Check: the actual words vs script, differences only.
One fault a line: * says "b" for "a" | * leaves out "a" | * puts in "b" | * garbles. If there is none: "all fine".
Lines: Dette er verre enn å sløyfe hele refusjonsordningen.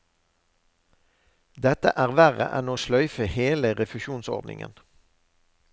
all fine